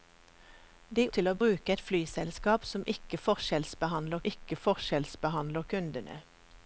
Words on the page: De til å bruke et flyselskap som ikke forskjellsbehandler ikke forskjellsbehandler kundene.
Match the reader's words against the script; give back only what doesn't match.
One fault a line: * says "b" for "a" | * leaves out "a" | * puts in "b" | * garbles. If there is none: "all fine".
all fine